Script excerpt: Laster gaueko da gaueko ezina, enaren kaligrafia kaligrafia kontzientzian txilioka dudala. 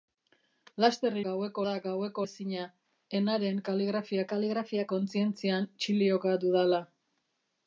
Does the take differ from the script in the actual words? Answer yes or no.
no